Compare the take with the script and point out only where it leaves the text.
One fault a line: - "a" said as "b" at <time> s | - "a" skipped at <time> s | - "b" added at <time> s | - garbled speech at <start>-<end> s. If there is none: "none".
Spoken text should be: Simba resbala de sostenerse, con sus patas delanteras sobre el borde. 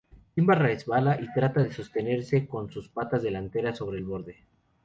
- "y trata" added at 1.2 s